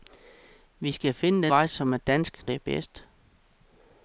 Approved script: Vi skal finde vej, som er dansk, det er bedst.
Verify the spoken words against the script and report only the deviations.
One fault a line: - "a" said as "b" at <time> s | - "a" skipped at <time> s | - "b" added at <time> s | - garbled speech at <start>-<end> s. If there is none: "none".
none